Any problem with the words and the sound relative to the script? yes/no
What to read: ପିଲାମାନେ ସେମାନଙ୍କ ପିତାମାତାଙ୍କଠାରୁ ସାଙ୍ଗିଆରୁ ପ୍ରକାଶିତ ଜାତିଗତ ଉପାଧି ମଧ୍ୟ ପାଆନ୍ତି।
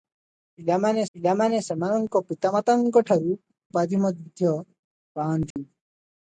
yes